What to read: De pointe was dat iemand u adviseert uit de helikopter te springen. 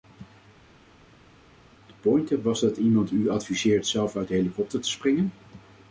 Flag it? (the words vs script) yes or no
yes